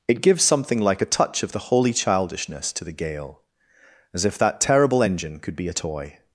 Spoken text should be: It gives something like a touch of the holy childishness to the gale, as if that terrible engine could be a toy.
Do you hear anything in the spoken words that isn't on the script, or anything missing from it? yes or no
no